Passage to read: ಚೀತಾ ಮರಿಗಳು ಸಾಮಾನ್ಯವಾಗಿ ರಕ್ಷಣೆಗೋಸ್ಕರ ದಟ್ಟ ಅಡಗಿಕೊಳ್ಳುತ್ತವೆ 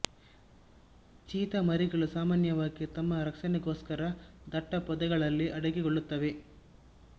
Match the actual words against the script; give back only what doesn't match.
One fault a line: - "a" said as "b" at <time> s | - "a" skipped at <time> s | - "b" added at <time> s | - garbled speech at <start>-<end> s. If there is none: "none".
- "ತಮ್ಮ" added at 3.0 s
- "ಪೊದೆಗಳಲ್ಲಿ" added at 4.9 s